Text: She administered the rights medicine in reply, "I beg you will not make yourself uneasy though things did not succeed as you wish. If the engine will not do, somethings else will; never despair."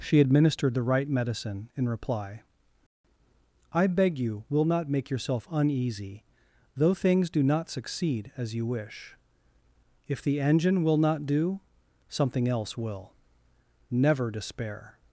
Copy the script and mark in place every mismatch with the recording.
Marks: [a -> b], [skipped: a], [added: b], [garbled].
She administered the [rights -> right] medicine in reply, "I beg you will not make yourself uneasy though things [did -> do] not succeed as you wish. If the engine will not do, [somethings -> something] else will; never despair."